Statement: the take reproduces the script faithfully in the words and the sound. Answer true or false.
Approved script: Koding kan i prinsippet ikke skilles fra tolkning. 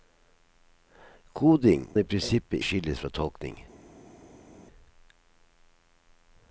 false